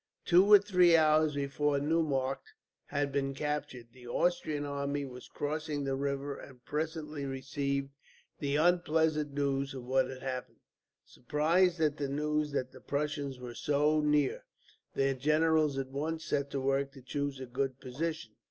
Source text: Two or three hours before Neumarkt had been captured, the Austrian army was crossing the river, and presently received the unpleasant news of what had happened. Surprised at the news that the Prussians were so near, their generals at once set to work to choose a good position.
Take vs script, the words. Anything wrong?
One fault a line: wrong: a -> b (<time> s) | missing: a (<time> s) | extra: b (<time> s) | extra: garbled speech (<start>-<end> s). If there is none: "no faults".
no faults